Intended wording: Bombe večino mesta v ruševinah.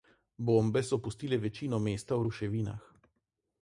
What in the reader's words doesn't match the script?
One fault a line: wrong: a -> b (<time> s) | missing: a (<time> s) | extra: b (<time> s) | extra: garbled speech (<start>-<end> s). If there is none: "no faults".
extra: so pustile (0.8 s)